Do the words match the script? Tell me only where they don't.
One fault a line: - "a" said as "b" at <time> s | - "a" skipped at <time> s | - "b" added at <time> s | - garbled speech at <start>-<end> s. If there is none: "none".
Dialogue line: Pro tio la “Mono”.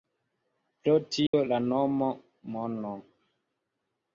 - "nomo" added at 1.6 s